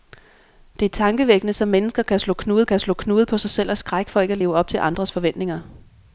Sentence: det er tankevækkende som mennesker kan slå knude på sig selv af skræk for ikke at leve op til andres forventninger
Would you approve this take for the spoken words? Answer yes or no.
no